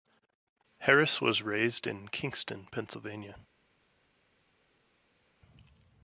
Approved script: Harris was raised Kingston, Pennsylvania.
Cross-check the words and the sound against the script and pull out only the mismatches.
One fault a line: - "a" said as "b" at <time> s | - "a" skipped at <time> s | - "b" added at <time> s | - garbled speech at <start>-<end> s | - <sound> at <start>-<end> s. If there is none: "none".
- "in" added at 1.9 s